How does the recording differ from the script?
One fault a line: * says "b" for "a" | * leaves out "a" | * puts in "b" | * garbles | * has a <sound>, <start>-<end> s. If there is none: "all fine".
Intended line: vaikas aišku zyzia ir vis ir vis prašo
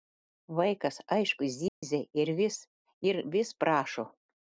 * has a dropout, 1.7-1.8 s